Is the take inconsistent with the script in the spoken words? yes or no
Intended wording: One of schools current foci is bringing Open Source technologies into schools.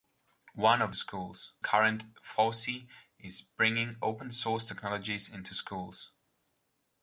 no